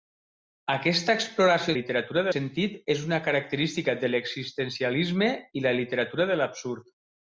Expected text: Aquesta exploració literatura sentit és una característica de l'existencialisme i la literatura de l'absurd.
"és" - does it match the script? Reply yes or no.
yes